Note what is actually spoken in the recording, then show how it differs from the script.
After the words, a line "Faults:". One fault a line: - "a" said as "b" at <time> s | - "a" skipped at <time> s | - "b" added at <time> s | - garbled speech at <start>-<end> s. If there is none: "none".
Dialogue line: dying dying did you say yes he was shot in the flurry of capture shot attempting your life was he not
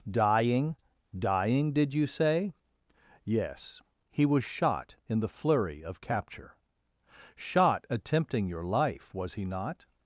dying dying did you say yes he was shot in the flurry of capture shot attempting your life was he not
Faults:
none